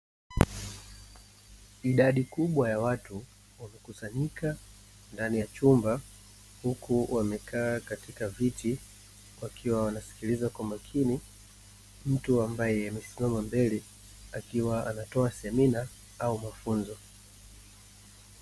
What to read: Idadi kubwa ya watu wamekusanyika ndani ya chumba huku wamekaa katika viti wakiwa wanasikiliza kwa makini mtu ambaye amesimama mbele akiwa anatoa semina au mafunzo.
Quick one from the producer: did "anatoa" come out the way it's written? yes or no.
yes